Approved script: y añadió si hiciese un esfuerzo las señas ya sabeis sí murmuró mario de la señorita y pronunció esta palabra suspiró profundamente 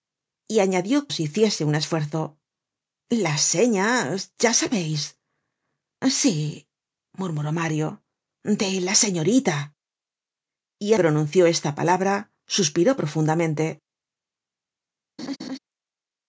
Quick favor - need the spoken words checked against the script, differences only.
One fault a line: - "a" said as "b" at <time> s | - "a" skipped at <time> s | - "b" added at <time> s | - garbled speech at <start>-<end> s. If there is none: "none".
none